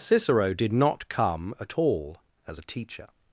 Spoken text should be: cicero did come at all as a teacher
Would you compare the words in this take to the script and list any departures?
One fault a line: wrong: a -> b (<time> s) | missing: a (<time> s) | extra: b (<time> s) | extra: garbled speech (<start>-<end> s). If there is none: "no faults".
extra: not (0.7 s)